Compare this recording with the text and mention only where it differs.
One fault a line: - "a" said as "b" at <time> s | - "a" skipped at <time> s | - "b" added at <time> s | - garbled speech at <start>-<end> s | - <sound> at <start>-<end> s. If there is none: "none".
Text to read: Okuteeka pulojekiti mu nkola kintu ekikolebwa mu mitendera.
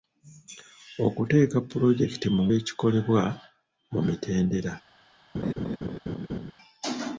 - "nkola kintu" skipped at 2.4 s
- laugh at 5.3-6.5 s